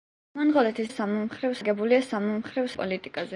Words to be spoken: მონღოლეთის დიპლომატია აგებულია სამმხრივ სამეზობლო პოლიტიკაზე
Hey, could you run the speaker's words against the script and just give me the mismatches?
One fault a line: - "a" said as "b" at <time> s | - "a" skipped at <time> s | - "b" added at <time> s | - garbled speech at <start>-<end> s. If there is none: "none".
- "დიპლომატია" said as "სამმხრივ" at 0.9 s
- "სამეზობლო" skipped at 2.7 s